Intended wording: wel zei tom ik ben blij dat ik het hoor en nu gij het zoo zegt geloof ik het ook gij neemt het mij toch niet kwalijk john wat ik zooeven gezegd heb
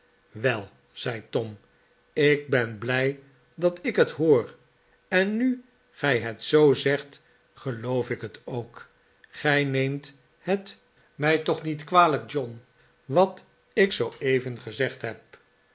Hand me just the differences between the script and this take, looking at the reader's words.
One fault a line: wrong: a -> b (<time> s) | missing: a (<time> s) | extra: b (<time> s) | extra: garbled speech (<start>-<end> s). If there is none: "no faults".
no faults